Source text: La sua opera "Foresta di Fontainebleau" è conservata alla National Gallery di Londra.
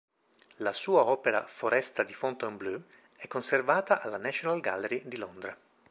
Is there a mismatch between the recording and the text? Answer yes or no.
no